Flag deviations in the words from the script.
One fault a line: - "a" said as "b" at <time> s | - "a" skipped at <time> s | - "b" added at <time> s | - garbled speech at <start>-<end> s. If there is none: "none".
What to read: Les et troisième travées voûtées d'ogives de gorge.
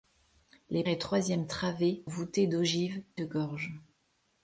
none